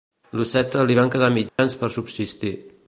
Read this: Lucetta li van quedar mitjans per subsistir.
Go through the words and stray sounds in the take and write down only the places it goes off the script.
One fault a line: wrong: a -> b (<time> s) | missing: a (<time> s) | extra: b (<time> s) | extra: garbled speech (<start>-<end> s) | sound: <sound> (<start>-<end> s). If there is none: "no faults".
sound: dropout (1.5-1.6 s)